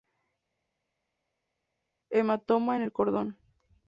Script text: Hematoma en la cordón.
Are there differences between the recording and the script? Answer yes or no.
yes